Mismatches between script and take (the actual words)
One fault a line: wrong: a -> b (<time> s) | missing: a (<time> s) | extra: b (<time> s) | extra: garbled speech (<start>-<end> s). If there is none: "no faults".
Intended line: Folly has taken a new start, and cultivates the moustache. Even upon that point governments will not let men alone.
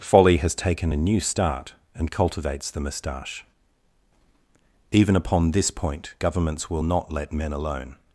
wrong: that -> this (5.5 s)